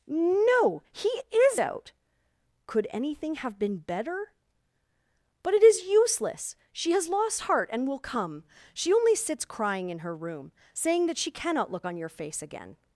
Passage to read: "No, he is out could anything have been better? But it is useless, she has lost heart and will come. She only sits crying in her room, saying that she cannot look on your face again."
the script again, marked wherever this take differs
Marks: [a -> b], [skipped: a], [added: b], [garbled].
"No, he is out could anything have been better? But it is useless, she has lost heart and will come. She only sits crying in her room, saying that she cannot look on your face again."